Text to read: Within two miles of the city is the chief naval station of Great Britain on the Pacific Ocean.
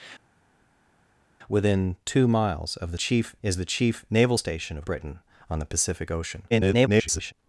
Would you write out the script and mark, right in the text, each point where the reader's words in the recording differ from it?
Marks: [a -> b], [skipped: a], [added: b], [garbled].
Within two miles of the [city -> chief] is the chief naval station of [skipped: Great] Britain on the Pacific Ocean. [garbled]